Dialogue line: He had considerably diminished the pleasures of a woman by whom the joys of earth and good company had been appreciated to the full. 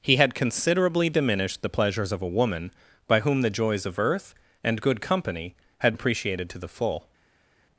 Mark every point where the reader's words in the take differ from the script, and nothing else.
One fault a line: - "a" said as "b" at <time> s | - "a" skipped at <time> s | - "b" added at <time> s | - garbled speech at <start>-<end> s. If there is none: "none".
- "been" skipped at 5.9 s